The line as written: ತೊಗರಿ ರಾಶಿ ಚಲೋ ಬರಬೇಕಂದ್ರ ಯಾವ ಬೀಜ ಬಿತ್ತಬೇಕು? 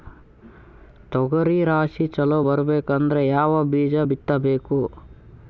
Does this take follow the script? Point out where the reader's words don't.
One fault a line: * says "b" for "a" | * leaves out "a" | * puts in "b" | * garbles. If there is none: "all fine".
all fine